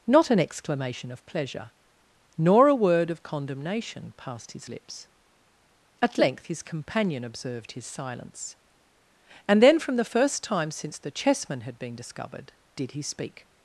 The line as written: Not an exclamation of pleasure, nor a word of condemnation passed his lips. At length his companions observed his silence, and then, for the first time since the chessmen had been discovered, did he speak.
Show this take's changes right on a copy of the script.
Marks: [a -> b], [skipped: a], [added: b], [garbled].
Not an exclamation of pleasure, nor a word of condemnation passed his lips. At length his [companions -> companion] observed his silence, and then, [for -> from] the first time since the chessmen had been discovered, did he speak.